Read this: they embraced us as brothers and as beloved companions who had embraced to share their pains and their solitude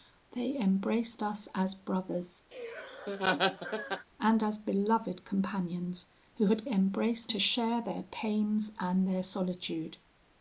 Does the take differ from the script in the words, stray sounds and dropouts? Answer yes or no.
yes